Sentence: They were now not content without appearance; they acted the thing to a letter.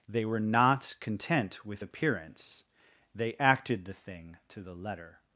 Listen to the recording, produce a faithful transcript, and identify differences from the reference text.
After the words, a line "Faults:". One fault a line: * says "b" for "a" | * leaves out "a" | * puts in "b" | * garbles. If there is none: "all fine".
They were not content with appearance; they acted the thing to the letter.
Faults:
* leaves out "now"
* says "with" for "without"
* says "the" for "a"